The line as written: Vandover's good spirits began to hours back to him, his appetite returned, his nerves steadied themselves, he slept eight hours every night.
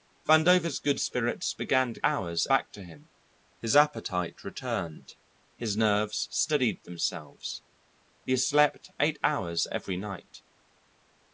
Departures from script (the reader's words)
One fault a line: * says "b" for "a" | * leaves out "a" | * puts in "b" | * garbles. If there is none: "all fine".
all fine